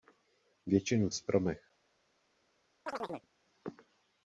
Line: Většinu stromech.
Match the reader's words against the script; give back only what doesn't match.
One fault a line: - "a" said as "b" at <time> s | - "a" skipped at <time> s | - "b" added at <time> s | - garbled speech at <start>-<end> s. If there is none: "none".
none